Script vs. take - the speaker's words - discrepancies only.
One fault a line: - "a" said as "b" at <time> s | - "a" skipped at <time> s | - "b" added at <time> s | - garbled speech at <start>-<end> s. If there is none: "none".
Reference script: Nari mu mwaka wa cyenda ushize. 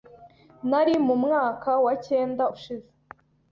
none